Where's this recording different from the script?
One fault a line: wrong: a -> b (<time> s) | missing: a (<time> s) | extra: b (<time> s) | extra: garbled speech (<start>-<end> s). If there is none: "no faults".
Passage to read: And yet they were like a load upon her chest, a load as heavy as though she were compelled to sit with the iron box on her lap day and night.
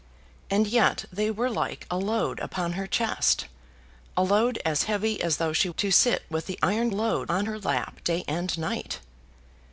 missing: were compelled (5.7 s)
wrong: box -> load (6.9 s)